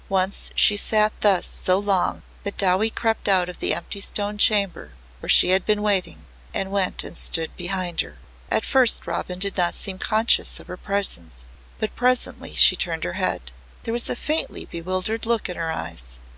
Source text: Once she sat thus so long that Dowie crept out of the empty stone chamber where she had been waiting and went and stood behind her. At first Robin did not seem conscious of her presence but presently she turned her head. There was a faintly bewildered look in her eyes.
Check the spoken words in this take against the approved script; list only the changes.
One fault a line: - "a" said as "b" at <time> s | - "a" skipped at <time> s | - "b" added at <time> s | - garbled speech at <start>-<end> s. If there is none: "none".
none